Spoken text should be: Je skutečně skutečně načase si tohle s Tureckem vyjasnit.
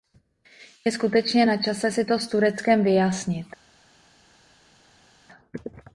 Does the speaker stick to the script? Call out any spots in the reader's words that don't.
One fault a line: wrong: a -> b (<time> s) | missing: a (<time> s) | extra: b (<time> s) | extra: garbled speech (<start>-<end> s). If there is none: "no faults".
missing: skutečně (1.5 s)
wrong: tohle -> to (2.0 s)